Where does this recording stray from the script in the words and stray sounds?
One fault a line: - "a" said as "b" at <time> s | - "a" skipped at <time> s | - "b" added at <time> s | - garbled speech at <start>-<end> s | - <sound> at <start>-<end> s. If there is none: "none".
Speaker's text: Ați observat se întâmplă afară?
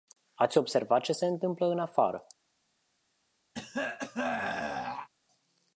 - "ce" added at 1.0 s
- "în" added at 1.7 s
- throat clearing at 3.5-5.1 s